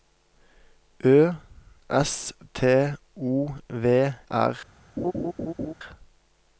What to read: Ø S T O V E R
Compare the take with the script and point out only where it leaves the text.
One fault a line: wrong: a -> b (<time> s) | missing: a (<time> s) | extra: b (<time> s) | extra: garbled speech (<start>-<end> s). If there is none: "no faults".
missing: E (4.1 s)